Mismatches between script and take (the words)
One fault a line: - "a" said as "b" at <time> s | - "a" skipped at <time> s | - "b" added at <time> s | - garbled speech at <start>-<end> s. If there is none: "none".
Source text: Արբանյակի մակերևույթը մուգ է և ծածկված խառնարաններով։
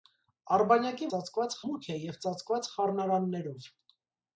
- "մակերևույթը" said as "ծածկված" at 1.1 s